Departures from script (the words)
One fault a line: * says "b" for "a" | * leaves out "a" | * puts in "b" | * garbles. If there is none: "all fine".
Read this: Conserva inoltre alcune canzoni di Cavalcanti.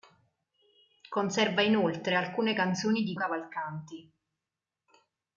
all fine